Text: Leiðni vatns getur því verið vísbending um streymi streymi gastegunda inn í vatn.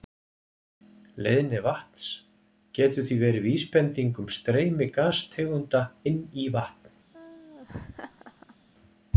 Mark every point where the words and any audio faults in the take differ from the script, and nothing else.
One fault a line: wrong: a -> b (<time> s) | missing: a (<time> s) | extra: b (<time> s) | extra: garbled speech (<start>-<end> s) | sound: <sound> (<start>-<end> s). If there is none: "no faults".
missing: streymi (4.9 s)
sound: laugh (7.1-8.6 s)